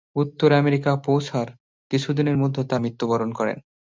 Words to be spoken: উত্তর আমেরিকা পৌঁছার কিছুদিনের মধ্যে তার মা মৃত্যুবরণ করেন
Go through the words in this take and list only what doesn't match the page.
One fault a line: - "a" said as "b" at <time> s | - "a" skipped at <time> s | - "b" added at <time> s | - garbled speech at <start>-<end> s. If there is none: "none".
- "মা" skipped at 2.8 s